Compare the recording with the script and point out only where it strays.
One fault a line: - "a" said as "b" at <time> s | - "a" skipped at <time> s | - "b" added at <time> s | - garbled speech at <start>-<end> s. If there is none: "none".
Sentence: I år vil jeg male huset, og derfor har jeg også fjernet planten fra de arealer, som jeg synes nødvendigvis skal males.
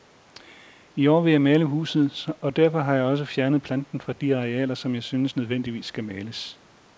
none